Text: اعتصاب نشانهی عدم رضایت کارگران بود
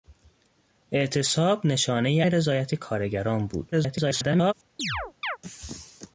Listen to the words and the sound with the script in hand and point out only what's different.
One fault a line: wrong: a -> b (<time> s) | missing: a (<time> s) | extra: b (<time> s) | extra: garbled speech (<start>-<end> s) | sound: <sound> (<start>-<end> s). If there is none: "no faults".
missing: عدم (2.2 s)
extra: garbled speech (3.7-4.5 s)
sound: chirp (4.8-5.4 s)